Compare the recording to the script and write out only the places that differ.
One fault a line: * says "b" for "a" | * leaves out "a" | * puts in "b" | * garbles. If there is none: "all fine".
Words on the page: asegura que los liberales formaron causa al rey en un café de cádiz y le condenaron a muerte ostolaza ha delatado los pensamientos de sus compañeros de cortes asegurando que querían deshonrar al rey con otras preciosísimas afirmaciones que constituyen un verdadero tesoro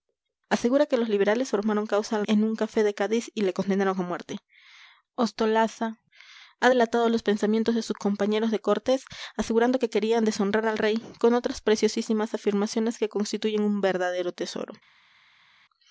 * leaves out "rey"